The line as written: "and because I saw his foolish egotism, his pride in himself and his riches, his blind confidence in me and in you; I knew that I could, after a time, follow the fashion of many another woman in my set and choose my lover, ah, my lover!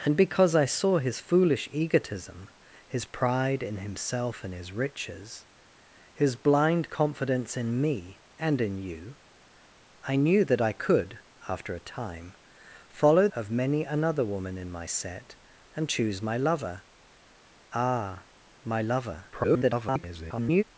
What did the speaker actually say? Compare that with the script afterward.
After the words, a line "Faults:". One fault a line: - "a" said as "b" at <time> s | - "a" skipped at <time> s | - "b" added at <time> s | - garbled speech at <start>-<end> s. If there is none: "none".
"and because I saw his foolish egotism, his pride in himself and his riches, his blind confidence in me and in you; I knew that I could, after a time, follow of many another woman in my set and choose my lover, ah, my lover! [garbled]
Faults:
- "the fashion" skipped at 13.3 s
- garbled speech at 19.3-20.6 s